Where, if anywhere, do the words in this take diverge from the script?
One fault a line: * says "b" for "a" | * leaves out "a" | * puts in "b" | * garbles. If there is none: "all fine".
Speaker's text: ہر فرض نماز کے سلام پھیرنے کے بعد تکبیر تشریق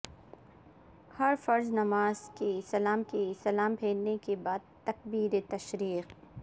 * puts in "کے سلام"